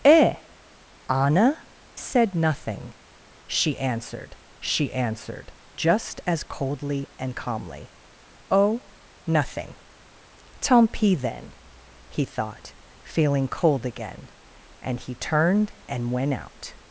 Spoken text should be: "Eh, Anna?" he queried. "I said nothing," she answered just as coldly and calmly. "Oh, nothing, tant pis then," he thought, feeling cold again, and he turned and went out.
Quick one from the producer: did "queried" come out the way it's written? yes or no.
no